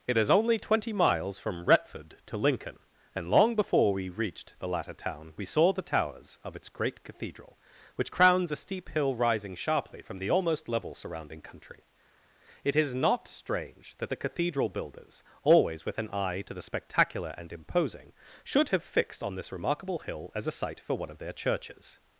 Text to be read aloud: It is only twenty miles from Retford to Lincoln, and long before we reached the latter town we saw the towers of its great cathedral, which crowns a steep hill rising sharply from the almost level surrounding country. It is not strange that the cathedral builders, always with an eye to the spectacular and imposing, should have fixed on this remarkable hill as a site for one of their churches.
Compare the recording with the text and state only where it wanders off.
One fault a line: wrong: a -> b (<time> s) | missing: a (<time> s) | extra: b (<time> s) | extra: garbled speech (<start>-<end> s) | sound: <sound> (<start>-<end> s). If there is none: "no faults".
no faults